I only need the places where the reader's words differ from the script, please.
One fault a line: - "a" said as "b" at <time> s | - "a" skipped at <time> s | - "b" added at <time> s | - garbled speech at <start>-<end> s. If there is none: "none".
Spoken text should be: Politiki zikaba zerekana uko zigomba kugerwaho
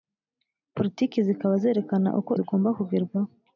none